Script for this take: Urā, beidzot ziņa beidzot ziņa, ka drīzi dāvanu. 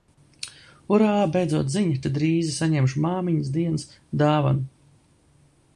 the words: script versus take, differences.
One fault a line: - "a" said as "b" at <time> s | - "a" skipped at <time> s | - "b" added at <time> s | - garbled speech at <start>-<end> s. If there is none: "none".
- "beidzot ziņa ka drīzi" said as "ka drīzi saņemšu māmiņas dienas" at 2.0 s